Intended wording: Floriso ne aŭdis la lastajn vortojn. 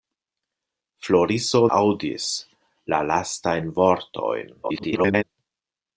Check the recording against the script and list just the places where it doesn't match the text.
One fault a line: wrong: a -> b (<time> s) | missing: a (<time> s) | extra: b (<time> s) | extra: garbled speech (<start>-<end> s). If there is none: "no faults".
missing: ne (1.6 s)
extra: garbled speech (4.6-5.2 s)